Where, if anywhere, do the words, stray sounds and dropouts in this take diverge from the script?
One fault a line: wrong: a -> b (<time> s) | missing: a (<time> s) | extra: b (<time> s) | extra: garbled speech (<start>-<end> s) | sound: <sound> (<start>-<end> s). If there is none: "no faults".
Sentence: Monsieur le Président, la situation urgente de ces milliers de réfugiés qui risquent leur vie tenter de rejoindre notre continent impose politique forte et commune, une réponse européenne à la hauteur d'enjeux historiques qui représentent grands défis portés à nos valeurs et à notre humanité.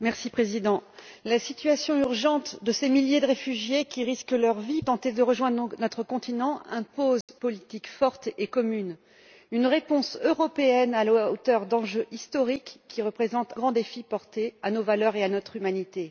sound: dropout (7.2-7.3 s)